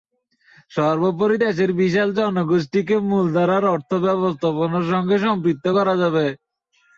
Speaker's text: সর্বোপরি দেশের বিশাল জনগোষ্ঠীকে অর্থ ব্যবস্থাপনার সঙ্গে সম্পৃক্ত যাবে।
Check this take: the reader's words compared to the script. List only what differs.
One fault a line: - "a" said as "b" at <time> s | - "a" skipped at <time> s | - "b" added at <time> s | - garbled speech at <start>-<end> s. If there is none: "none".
- "মূলধারার" added at 3.1 s
- "করা" added at 5.7 s